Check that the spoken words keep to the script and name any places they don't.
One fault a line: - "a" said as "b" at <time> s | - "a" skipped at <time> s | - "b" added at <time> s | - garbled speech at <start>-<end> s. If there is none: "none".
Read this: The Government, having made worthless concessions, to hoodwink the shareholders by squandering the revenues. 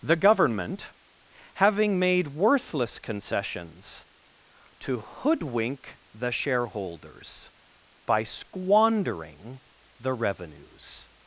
none